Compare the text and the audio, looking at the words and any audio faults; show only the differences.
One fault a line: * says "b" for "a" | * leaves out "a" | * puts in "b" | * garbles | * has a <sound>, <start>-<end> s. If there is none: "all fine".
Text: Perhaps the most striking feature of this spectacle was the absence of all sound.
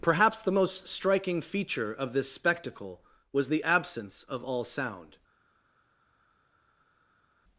all fine